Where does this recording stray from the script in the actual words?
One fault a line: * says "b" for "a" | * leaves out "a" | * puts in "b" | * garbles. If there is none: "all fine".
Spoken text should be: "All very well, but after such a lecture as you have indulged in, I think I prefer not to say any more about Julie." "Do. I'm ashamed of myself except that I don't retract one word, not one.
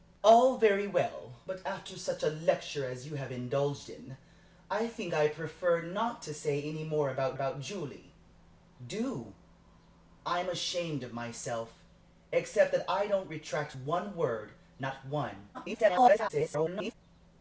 * puts in "about"
* garbles